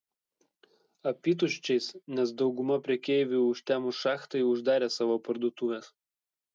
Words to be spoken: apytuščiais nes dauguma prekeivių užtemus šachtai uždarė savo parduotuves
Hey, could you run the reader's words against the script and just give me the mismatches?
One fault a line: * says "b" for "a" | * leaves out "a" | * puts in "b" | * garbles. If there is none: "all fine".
all fine